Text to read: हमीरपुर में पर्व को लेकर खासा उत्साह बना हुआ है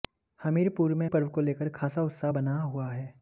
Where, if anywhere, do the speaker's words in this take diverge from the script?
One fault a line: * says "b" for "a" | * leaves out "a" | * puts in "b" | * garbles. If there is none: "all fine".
all fine